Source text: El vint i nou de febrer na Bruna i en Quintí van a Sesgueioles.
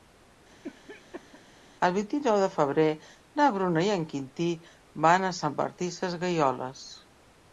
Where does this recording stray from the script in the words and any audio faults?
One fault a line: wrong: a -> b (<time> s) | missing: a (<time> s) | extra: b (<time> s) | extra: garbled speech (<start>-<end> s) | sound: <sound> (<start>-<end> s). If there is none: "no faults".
sound: cough (0.6-1.4 s)
extra: Sant Martí (5.4 s)